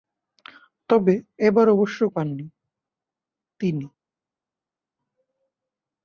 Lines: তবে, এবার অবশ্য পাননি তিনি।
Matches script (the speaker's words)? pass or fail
pass